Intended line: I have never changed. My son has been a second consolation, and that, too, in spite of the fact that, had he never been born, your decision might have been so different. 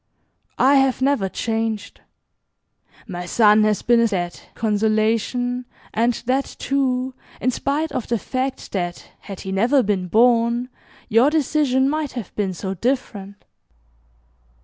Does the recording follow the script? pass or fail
fail